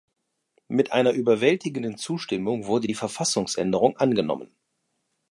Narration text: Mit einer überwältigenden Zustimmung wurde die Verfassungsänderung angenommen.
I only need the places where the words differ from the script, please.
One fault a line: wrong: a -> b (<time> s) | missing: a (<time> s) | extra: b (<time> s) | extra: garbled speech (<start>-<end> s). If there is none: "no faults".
no faults